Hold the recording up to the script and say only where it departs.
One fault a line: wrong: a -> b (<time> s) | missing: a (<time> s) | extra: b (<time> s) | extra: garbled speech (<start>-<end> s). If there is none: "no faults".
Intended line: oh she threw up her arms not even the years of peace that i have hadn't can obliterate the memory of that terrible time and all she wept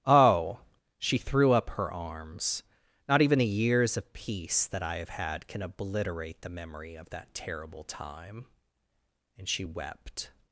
wrong: hadn't -> had (5.1 s)
missing: all (9.5 s)